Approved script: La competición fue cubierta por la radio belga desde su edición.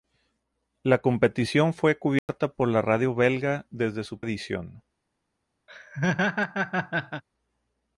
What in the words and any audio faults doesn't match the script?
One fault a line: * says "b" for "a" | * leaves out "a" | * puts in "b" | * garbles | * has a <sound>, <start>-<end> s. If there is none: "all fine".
* has a dropout, 2.2-2.3 s
* has a laugh, 5.7-7.2 s